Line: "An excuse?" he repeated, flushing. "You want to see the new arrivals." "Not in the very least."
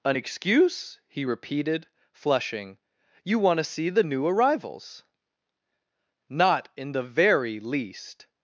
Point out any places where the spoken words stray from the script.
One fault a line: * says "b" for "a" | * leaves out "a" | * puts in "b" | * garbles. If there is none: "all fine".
all fine